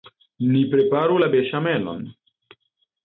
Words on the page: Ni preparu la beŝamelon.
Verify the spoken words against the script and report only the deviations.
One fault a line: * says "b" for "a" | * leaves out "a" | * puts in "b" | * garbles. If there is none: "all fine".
all fine